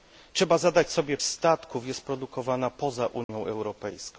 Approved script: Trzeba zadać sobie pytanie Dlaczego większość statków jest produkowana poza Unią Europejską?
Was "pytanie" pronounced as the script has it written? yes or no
no